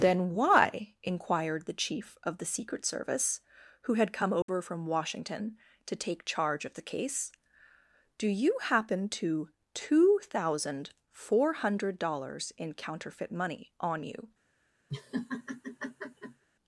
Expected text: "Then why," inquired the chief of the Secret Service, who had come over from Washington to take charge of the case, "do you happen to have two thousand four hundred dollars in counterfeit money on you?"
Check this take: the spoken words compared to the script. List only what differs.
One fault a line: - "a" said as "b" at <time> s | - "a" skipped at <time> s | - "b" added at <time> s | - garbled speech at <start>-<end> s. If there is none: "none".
- "have" skipped at 9.5 s